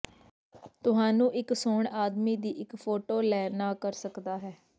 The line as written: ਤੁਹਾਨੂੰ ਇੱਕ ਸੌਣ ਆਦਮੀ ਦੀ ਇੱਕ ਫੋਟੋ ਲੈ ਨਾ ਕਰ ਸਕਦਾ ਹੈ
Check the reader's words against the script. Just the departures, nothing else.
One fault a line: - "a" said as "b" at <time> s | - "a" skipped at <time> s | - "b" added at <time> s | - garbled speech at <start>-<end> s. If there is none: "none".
none